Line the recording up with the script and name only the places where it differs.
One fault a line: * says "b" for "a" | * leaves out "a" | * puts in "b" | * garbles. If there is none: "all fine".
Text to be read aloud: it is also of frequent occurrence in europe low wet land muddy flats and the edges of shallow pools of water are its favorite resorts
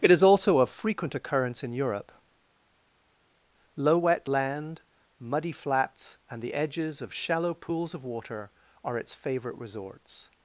all fine